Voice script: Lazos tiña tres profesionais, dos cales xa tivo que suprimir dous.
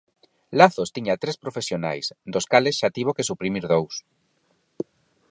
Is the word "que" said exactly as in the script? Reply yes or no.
yes